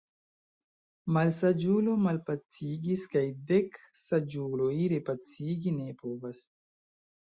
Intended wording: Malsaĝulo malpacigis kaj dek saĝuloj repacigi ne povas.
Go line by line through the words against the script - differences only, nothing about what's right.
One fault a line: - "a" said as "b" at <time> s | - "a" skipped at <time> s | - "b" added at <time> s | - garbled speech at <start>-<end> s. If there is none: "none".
none